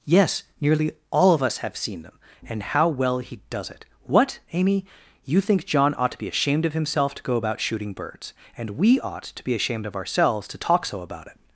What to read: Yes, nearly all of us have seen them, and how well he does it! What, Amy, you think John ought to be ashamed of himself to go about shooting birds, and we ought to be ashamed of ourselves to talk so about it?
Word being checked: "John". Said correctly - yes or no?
yes